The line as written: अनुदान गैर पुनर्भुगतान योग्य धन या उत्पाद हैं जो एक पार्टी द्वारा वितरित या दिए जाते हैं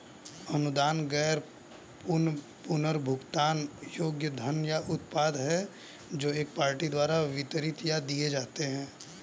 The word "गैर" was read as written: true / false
true